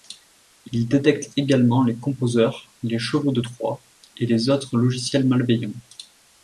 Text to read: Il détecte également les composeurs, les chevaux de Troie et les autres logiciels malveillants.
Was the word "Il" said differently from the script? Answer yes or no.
no